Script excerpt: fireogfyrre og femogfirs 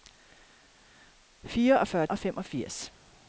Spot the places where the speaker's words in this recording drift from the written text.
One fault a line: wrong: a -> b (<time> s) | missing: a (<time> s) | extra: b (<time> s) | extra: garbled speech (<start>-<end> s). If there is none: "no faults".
no faults